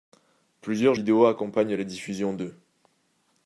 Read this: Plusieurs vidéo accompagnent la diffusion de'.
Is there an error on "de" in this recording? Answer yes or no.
no